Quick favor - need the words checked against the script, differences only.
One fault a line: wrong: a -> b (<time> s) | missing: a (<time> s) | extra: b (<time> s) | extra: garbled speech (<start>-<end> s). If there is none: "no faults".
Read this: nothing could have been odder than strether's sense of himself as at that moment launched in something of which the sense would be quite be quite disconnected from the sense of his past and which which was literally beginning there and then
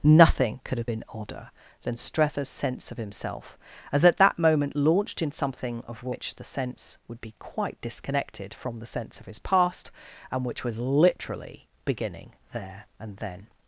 missing: be quite (7.8 s)
missing: which (10.6 s)